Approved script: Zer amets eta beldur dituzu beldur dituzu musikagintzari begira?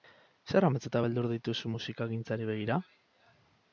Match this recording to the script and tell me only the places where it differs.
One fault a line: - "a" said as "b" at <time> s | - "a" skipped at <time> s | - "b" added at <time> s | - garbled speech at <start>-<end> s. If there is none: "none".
- "beldur dituzu" skipped at 1.7 s